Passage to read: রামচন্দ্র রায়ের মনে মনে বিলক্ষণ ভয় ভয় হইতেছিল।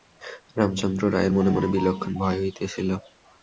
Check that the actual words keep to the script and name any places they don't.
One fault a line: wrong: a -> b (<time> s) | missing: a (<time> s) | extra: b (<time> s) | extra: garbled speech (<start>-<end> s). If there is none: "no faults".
missing: ভয় (2.4 s)